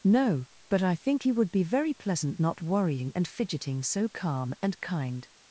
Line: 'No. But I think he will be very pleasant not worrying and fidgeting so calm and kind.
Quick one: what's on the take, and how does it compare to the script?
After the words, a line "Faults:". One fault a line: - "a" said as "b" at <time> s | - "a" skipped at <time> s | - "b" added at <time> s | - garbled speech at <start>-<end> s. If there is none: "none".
'No. But I think he would be very pleasant not worrying and fidgeting so calm and kind.
Faults:
- "will" said as "would" at 1.3 s